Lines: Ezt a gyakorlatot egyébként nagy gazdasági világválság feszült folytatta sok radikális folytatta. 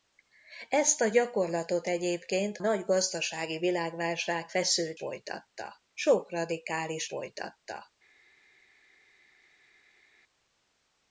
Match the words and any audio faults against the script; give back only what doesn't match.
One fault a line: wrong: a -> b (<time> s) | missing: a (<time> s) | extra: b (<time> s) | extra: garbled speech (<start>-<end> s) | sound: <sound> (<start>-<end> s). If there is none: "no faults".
no faults